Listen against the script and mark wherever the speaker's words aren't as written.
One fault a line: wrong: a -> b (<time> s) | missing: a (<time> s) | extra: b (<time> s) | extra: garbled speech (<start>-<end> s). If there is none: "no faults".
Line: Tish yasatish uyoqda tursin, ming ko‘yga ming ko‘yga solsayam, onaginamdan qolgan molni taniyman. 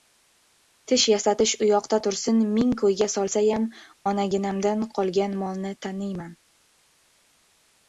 missing: ming ko‘yga (3.1 s)